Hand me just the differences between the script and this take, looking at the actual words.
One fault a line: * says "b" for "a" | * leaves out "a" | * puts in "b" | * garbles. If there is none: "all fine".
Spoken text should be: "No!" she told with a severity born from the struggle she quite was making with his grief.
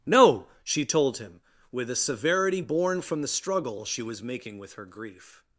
* puts in "him"
* leaves out "quite"
* says "her" for "his"